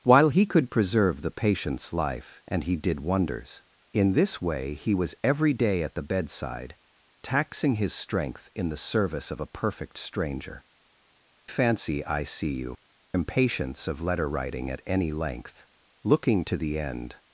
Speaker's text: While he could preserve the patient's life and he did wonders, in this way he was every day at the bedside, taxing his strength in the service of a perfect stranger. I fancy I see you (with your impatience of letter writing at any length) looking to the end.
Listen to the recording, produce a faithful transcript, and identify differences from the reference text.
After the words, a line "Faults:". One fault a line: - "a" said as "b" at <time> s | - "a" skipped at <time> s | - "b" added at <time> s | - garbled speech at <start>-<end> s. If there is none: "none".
While he could preserve the patient's life and he did wonders, in this way he was every day at the bedside, taxing his strength in the service of a perfect stranger. fancy I see you (impatience of letter writing at any length) looking to the end.
Faults:
- "I" skipped at 10.6 s
- "with your" skipped at 12.7 s